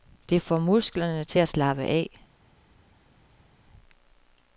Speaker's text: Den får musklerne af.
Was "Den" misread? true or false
true